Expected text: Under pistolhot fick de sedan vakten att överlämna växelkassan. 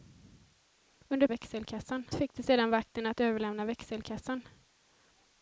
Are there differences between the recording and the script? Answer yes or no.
yes